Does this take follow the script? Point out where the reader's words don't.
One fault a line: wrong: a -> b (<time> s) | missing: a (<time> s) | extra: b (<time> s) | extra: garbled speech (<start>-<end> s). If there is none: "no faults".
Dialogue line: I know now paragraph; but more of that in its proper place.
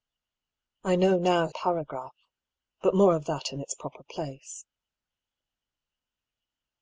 no faults